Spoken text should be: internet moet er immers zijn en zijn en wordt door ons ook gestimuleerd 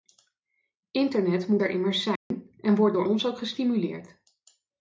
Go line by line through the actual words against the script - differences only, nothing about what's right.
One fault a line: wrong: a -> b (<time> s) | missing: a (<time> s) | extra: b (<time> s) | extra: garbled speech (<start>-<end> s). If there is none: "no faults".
missing: zijn en (2.7 s)